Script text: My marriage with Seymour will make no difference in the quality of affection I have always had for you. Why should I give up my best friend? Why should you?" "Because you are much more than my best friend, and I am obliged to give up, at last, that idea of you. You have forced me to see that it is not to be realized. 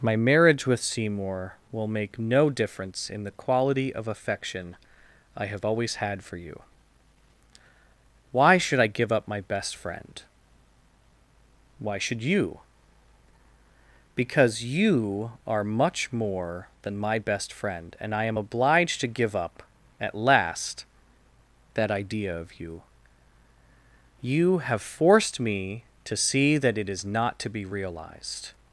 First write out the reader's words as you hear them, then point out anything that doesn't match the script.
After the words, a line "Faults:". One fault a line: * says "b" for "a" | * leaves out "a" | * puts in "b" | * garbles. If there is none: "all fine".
My marriage with Seymour will make no difference in the quality of affection I have always had for you. Why should I give up my best friend? Why should you?" "Because you are much more than my best friend, and I am obliged to give up, at last, that idea of you. You have forced me to see that it is not to be realized.
Faults:
all fine